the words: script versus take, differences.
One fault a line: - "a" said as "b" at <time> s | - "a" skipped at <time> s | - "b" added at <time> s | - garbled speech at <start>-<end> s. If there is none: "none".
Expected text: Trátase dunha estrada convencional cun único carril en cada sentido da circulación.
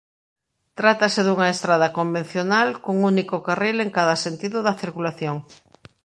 none